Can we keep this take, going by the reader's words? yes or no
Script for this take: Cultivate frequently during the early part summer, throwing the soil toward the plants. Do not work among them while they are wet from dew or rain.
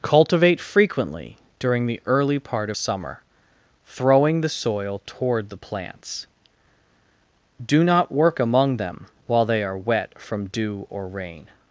yes